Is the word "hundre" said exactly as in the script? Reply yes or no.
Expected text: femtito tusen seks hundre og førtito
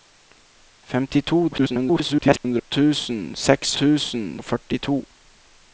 no